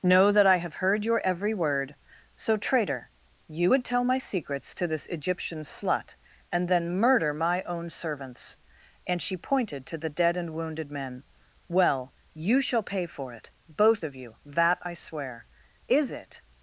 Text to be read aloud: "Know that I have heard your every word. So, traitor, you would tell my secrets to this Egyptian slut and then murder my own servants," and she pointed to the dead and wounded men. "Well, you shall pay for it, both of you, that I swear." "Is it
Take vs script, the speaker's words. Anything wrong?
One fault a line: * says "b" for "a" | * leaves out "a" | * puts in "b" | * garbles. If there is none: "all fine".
all fine